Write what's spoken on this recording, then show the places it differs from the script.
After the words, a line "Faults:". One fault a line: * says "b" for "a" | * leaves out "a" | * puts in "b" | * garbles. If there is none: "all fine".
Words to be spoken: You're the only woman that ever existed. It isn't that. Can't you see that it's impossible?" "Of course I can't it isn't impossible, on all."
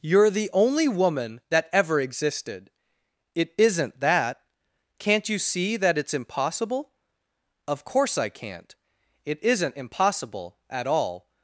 You're the only woman that ever existed. It isn't that. Can't you see that it's impossible?" "Of course I can't it isn't impossible, at all."
Faults:
* says "at" for "on"